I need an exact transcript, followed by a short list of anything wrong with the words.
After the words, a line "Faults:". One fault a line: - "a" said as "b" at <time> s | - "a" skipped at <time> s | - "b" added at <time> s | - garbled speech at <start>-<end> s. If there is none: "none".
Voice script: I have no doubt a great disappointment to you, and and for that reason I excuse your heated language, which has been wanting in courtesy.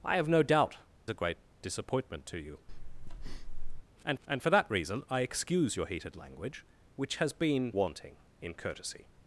I have no doubt a great disappointment to you, and and for that reason I excuse your heated language, which has been wanting in courtesy.
Faults:
none